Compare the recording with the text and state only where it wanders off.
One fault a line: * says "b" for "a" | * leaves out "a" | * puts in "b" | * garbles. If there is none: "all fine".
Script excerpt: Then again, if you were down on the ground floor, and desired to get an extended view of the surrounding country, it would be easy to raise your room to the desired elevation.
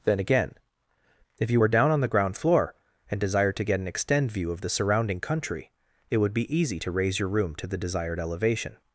* says "extend" for "extended"